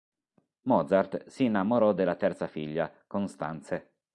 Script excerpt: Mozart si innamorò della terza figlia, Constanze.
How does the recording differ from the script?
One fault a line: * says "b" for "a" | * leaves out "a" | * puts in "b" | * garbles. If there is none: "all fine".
all fine